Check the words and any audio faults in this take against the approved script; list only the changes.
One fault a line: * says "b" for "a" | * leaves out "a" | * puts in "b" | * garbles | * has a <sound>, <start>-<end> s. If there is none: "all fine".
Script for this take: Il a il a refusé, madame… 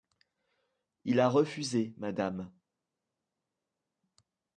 * leaves out "il a"